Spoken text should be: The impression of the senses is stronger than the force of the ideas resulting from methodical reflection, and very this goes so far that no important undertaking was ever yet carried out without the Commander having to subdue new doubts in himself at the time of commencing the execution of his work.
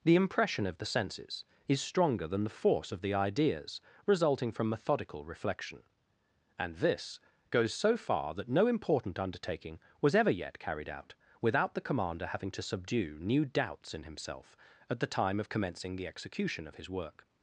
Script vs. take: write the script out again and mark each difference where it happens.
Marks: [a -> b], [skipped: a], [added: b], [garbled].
The impression of the senses is stronger than the force of the ideas resulting from methodical reflection, and [skipped: very] this goes so far that no important undertaking was ever yet carried out without the Commander having to subdue new doubts in himself at the time of commencing the execution of his work.